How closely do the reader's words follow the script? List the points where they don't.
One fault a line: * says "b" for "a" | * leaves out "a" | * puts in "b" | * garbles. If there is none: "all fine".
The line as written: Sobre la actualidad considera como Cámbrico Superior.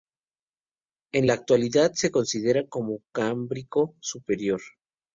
* says "En" for "Sobre"
* puts in "se"